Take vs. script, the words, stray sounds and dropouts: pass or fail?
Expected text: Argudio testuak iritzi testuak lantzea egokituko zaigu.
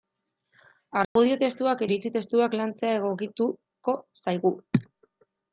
fail